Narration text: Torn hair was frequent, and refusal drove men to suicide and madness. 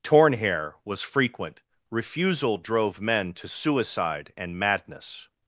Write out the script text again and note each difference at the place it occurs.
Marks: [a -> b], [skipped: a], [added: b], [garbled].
Torn hair was frequent, [skipped: and] refusal drove men to suicide and madness.